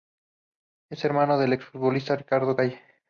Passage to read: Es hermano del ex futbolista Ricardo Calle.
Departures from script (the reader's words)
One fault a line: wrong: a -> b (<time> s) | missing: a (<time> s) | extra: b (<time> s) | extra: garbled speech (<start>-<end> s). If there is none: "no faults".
no faults